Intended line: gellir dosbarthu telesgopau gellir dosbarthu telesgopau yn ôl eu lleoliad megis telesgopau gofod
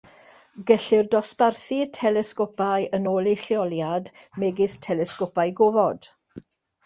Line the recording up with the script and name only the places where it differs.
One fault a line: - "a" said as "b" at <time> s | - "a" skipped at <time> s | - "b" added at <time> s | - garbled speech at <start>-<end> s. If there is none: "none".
- "gellir dosbarthu telesgopau" skipped at 2.9 s